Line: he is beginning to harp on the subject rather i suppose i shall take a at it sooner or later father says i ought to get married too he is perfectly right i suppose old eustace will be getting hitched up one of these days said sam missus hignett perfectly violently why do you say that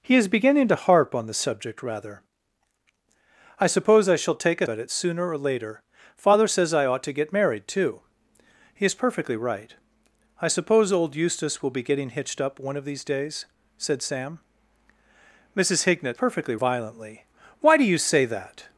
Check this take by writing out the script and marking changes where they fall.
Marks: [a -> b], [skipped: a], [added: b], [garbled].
he is beginning to harp on the subject rather i suppose i shall take a at it sooner or later father says i ought to get married too he is perfectly right i suppose old eustace will be getting hitched up one of these days said sam missus hignett perfectly violently why do you say that